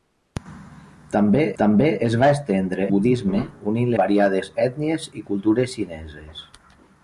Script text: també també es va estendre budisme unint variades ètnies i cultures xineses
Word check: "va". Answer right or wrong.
right